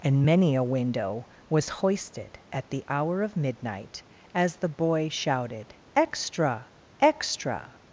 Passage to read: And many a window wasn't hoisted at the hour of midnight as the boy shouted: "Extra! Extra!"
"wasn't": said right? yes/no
no